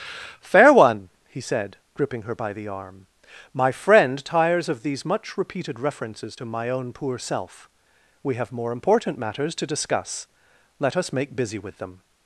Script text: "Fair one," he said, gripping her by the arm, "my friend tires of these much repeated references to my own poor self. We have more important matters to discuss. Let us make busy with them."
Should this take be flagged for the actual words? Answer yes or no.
no